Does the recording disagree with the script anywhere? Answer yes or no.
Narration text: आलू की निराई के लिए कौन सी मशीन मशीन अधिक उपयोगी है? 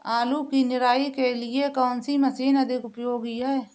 yes